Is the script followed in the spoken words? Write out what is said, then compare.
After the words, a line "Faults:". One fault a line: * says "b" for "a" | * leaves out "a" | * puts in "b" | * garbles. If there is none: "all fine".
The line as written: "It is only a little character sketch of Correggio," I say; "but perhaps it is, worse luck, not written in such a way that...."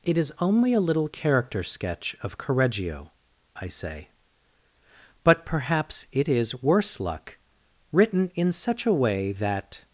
"It is only a little character sketch of Correggio," I say; "but perhaps it is, worse luck, written in such a way that...."
Faults:
* leaves out "not"